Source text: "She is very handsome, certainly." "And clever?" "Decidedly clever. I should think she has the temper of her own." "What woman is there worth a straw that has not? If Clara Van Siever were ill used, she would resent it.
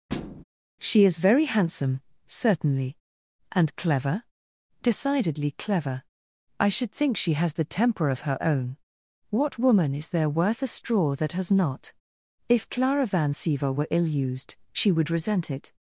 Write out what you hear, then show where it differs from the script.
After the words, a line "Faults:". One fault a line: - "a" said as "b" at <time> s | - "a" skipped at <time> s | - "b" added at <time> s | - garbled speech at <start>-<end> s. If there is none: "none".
"She is very handsome, certainly." "And clever?" "Decidedly clever. I should think she has the temper of her own." "What woman is there worth a straw that has not? If Clara Van Siever were ill used, she would resent it.
Faults:
none